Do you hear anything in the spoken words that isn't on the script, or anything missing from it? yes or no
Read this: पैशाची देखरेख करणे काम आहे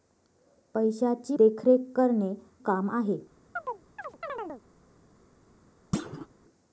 no